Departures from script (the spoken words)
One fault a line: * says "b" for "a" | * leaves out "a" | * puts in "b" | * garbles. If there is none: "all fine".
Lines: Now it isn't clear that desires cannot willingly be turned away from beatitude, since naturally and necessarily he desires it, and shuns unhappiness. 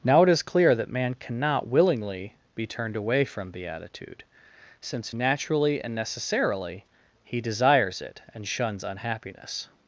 * says "is" for "isn't"
* says "man" for "desires"